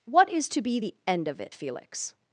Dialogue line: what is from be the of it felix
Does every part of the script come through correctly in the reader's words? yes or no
no